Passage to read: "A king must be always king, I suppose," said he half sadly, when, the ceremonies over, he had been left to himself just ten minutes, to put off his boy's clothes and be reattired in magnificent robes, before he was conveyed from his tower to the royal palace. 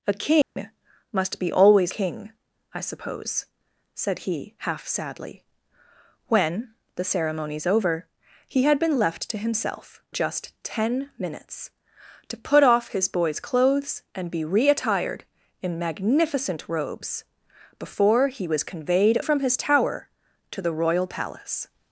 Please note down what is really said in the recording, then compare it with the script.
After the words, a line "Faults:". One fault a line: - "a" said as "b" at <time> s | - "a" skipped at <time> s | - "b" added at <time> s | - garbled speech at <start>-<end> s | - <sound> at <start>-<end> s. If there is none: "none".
"A king must be always king, I suppose," said he half sadly, when, the ceremonies over, he had been left to himself just ten minutes, to put off his boy's clothes and be reattired in magnificent robes, before he was conveyed from his tower to the royal palace.
Faults:
- dropout at 0.4-0.6 s